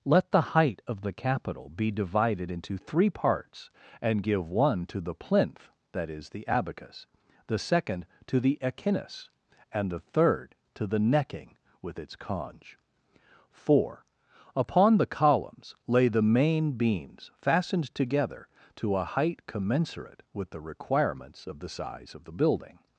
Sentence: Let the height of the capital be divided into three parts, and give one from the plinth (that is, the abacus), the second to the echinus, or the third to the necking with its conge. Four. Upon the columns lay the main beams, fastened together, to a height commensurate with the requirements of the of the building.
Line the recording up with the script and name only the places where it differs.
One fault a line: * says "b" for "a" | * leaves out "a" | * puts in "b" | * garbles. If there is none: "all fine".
* says "to" for "from"
* says "and" for "or"
* puts in "size"